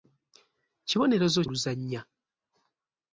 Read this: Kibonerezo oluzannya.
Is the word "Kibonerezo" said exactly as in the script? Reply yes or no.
yes